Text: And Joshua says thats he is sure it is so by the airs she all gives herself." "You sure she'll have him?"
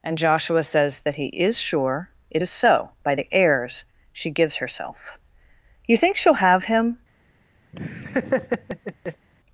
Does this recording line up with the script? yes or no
no